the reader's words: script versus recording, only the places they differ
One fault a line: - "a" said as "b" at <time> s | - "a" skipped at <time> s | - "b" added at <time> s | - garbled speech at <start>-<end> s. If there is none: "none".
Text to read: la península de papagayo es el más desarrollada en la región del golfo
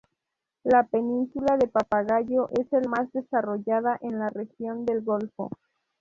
none